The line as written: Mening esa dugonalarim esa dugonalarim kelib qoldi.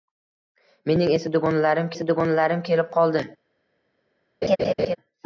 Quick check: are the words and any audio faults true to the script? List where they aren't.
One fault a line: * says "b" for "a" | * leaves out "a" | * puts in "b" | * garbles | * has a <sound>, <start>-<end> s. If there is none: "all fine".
* has a laugh, 4.4-5.0 s